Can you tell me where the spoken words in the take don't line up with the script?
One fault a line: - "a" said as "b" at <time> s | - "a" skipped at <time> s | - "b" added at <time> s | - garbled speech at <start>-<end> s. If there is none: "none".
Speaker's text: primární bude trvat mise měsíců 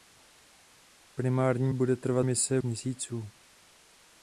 none